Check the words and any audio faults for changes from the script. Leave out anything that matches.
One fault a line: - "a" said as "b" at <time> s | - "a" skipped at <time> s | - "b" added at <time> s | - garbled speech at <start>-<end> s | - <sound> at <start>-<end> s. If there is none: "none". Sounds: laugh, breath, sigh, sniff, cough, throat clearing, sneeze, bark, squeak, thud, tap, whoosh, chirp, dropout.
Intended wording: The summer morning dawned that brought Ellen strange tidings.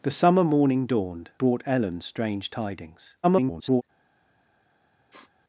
- "that" skipped at 1.3 s
- garbled speech at 3.2-3.8 s
- sniff at 5.1-5.3 s